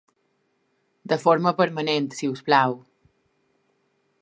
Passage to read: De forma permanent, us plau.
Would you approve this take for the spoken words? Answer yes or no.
no